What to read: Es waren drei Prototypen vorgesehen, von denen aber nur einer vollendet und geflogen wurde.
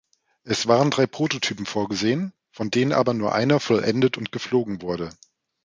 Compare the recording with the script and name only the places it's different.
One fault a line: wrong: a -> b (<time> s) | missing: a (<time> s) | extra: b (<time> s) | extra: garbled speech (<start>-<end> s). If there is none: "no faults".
no faults